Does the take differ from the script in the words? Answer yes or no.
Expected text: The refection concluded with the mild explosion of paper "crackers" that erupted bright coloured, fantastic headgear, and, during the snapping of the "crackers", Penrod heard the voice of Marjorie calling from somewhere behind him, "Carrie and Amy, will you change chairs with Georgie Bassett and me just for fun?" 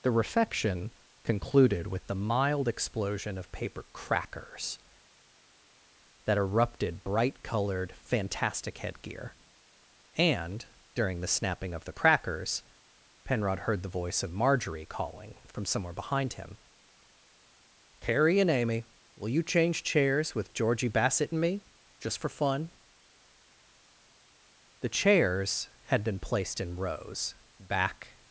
yes